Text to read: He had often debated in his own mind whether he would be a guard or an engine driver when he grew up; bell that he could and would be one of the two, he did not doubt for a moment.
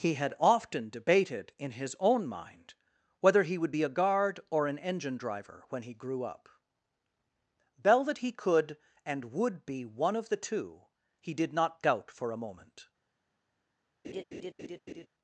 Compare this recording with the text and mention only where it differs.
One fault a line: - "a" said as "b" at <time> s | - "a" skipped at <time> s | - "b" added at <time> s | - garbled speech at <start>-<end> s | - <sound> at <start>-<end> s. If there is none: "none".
- laugh at 14.0-15.1 s